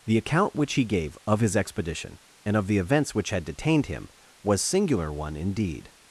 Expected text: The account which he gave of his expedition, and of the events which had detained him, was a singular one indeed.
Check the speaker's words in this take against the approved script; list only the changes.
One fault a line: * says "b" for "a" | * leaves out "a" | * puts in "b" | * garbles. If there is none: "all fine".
* leaves out "a"